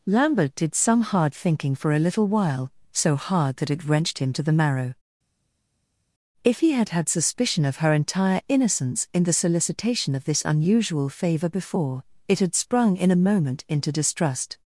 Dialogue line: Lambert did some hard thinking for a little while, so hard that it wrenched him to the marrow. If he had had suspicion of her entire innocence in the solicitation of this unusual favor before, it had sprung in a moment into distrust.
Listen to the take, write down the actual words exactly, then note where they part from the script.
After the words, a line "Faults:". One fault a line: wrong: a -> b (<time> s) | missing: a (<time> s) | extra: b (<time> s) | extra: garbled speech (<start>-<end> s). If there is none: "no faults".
Lambert did some hard thinking for a little while, so hard that it wrenched him to the marrow. If he had had suspicion of her entire innocence in the solicitation of this unusual favor before, it had sprung in a moment into distrust.
Faults:
no faults